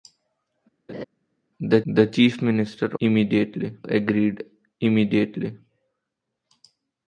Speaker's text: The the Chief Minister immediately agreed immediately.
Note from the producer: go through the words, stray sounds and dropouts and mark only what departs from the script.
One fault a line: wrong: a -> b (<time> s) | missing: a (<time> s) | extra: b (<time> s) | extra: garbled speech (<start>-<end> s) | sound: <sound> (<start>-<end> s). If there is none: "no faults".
sound: laugh (0.9-1.0 s)